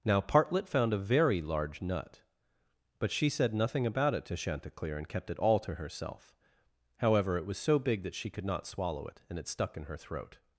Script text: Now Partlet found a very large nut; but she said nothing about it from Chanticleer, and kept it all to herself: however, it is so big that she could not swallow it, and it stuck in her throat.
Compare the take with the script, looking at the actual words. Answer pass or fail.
fail